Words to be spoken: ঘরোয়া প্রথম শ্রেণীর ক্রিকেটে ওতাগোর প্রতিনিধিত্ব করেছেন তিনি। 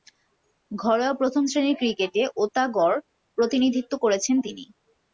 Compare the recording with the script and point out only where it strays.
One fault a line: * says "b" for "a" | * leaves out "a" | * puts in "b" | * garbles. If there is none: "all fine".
all fine